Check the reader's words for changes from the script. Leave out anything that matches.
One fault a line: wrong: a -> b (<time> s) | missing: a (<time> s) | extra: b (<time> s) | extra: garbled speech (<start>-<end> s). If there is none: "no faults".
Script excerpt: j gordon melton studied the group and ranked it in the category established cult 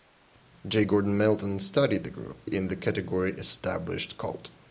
missing: and ranked it (2.5 s)